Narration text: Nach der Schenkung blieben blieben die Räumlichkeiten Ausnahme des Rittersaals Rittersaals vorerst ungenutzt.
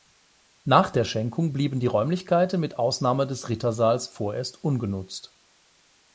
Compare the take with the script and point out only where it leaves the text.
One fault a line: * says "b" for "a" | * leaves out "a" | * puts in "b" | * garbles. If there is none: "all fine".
* leaves out "blieben"
* puts in "mit"
* leaves out "Rittersaals"